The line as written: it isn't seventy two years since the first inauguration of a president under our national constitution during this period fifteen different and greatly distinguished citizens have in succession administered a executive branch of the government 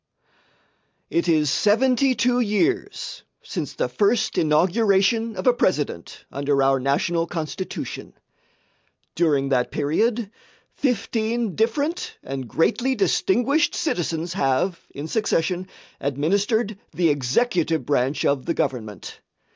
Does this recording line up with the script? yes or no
no